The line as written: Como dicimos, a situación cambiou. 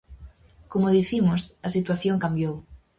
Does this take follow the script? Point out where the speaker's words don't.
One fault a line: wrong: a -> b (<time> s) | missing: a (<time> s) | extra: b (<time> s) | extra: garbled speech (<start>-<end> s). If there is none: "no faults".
no faults